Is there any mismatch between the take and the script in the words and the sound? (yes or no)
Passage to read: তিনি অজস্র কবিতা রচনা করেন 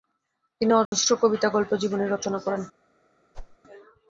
yes